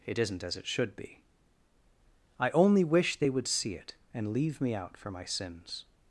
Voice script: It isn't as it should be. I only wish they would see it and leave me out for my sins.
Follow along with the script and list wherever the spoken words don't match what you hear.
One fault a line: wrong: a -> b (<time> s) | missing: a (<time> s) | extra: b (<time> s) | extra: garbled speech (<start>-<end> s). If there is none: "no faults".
no faults